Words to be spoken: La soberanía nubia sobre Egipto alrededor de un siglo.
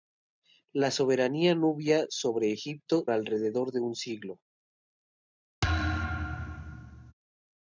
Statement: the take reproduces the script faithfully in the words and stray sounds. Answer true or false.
false